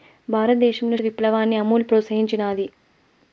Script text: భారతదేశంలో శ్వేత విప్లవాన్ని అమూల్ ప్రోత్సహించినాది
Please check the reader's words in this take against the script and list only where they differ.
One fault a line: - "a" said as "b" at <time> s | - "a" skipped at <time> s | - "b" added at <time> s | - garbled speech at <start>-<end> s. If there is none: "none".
- "శ్వేత" skipped at 1.0 s